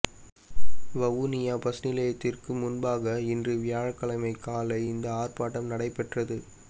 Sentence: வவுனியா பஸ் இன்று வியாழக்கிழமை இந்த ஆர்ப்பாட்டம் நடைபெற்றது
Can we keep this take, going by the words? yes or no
no